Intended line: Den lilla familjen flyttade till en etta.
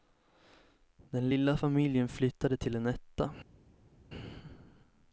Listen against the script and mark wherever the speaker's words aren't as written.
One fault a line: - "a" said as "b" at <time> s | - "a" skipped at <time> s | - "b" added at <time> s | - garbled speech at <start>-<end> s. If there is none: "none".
none